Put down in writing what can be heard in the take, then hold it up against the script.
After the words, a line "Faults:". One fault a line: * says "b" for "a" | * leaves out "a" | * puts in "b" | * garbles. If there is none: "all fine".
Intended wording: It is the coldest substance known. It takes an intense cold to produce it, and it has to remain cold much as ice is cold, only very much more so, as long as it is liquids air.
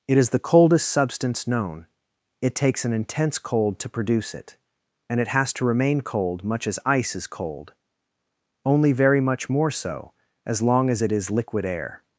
It is the coldest substance known. It takes an intense cold to produce it, and it has to remain cold much as ice is cold, only very much more so, as long as it is liquid air.
Faults:
* says "liquid" for "liquids"